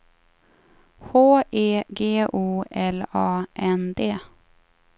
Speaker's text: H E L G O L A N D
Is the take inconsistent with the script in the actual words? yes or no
yes